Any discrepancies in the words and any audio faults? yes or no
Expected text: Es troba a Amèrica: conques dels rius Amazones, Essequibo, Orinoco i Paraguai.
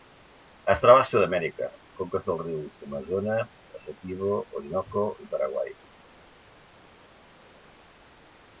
yes